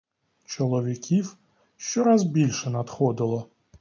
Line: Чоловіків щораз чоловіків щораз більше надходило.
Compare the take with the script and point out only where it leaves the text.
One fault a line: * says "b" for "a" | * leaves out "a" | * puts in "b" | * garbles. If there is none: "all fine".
* leaves out "чоловіків щораз"